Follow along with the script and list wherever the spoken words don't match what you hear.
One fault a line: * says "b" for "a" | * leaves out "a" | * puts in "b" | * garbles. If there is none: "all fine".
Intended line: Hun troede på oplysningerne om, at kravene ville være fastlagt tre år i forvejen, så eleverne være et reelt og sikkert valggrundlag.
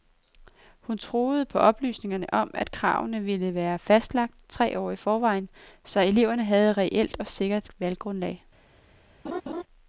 * says "havde" for "være"